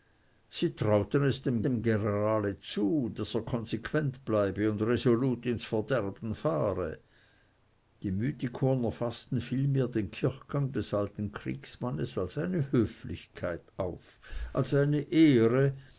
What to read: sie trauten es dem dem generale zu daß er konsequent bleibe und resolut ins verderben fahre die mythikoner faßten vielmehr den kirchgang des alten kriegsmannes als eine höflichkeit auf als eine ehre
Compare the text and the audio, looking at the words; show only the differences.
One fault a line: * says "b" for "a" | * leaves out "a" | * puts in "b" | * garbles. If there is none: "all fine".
all fine